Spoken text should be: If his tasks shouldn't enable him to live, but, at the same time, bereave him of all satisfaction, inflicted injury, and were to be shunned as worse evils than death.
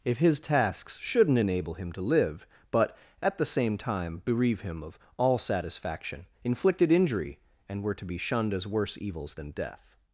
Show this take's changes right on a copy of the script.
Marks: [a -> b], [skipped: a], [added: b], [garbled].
If his tasks shouldn't enable him to live, but, at the same time, bereave him of all satisfaction, inflicted injury, and were to be shunned as worse evils than death.